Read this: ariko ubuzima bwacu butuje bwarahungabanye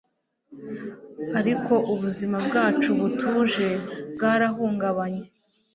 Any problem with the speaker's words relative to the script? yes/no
no